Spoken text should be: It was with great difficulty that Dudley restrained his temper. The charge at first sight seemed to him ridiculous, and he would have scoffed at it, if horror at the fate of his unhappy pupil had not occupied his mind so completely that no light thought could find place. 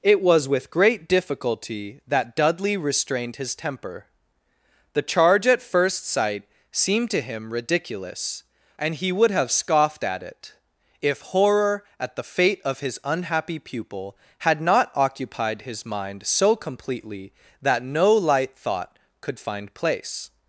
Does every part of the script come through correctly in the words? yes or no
yes